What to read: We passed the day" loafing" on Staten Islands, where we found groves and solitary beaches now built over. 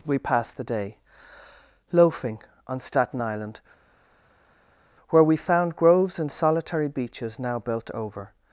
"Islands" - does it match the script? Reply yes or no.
no